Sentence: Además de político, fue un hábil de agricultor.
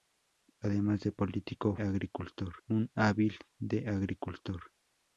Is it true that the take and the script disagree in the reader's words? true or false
true